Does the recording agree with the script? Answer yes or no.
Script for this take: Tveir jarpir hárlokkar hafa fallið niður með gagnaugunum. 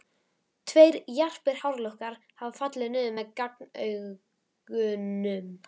yes